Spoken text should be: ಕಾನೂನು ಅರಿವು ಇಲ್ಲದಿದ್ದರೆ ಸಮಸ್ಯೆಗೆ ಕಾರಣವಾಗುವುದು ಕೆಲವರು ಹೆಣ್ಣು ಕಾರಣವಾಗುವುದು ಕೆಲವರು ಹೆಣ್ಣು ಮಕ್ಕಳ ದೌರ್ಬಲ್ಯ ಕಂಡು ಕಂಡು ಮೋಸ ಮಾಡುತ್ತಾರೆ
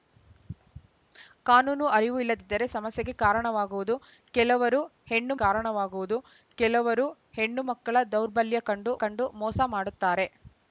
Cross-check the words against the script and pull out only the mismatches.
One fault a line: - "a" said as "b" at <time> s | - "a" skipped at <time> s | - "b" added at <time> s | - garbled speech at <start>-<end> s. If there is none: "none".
none